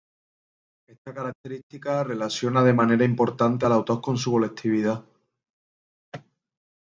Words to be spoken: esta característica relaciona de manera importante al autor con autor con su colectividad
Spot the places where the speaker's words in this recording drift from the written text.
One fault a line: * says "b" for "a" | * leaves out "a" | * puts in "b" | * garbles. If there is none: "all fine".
* leaves out "autor con"